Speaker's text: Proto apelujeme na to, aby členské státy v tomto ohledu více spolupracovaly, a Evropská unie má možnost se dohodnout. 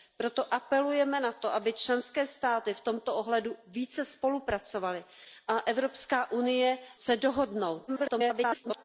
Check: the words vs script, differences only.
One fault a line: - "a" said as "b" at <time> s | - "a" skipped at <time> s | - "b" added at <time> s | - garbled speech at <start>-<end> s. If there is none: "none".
- "má možnost" skipped at 6.8 s
- garbled speech at 7.9-8.8 s